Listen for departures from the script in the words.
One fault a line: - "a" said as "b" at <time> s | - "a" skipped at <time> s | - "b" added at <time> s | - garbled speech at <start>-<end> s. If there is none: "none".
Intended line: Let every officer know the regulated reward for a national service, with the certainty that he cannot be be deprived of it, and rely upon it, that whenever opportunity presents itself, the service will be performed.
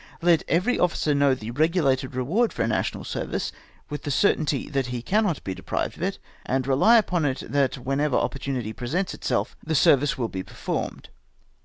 - "be" skipped at 5.5 s